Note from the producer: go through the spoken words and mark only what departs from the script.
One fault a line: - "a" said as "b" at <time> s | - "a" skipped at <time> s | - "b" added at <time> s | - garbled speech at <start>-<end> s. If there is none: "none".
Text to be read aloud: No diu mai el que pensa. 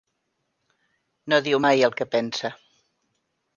none